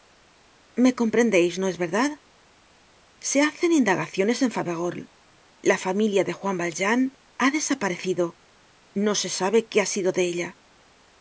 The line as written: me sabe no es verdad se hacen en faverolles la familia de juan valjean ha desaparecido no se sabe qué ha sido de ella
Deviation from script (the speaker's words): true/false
true